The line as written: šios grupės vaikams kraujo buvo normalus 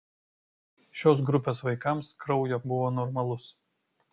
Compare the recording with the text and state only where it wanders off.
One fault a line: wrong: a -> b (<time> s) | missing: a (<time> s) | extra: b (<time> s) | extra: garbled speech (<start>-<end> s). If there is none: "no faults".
no faults